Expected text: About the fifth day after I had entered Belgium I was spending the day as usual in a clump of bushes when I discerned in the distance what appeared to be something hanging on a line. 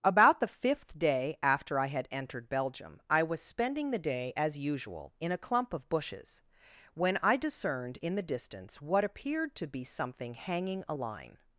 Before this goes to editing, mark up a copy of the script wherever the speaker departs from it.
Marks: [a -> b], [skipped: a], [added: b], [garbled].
About the fifth day after I had entered Belgium I was spending the day as usual in a clump of bushes when I discerned in the distance what appeared to be something hanging [skipped: on] a line.